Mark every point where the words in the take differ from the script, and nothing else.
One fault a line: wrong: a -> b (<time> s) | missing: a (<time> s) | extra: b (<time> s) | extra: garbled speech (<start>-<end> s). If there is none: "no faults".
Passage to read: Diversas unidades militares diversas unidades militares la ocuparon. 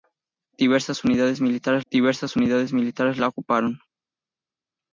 no faults